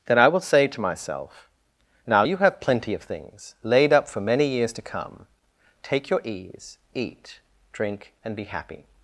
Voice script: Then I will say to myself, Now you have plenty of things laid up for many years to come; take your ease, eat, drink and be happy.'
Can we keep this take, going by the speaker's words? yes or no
yes